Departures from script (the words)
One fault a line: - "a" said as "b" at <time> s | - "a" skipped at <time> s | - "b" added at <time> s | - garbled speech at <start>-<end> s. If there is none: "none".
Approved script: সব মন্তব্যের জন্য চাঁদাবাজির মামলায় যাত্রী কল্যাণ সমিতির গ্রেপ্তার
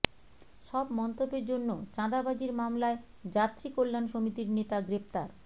- "নেতা" added at 4.6 s